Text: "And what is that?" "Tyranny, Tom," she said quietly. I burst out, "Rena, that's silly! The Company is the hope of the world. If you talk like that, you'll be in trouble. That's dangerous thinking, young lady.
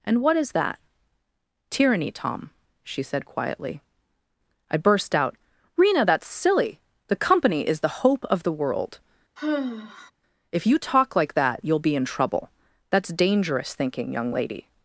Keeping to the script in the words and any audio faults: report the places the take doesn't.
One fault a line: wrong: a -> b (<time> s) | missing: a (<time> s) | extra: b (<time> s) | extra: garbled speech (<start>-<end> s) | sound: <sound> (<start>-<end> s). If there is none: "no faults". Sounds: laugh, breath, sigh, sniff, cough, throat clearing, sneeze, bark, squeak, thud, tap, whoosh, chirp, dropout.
sound: sigh (9.4-10.1 s)